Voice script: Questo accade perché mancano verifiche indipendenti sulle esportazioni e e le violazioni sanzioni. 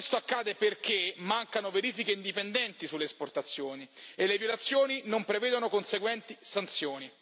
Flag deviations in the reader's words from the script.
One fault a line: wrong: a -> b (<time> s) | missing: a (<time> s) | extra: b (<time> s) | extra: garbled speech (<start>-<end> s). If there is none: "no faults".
missing: e (4.3 s)
extra: non prevedono conseguenti (5.0 s)